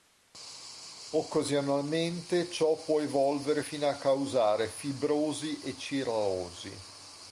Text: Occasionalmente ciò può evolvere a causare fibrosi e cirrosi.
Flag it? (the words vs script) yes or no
yes